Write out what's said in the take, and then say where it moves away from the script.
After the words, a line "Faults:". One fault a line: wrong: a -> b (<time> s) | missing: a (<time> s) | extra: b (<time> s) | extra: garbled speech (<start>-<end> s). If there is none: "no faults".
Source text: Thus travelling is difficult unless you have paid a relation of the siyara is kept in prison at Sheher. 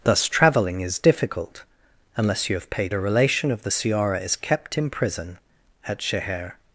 Thus travelling is difficult unless you have paid a relation of the siyara is kept in prison at Sheher.
Faults:
no faults